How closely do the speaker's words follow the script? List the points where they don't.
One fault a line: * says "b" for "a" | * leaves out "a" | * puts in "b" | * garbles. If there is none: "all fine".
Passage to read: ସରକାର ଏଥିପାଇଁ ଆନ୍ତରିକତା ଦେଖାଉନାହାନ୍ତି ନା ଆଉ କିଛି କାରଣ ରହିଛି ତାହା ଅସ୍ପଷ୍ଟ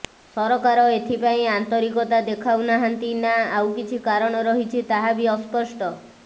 * puts in "ବି"